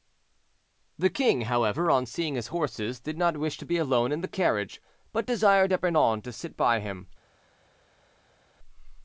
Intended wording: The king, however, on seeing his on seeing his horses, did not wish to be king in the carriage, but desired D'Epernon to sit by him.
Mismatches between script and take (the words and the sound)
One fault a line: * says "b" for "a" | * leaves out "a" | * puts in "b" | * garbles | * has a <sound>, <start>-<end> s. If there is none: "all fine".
* leaves out "on seeing his"
* says "alone" for "king"